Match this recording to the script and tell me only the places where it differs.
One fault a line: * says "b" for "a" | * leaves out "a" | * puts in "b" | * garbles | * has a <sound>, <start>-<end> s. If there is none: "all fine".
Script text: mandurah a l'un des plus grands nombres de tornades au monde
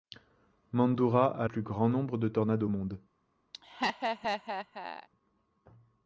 * leaves out "l'un des"
* has a laugh, 3.5-5.1 s